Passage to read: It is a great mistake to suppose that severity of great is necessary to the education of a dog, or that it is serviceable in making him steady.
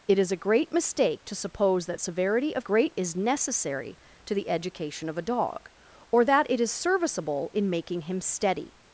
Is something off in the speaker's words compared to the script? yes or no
no